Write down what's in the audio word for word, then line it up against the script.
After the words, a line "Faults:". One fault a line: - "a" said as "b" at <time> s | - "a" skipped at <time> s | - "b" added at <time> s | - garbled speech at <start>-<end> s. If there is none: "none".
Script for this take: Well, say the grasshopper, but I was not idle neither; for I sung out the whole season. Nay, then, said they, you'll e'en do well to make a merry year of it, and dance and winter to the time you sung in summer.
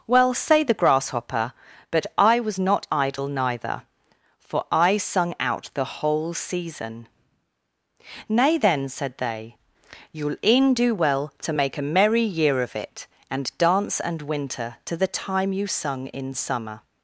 Well, say the grasshopper, but I was not idle neither; for I sung out the whole season. Nay, then, said they, you'll e'en do well to make a merry year of it, and dance and winter to the time you sung in summer.
Faults:
none